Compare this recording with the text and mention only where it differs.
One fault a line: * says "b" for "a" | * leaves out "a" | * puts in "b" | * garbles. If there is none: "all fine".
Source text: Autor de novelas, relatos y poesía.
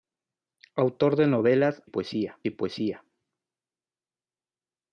* says "poesía" for "relatos"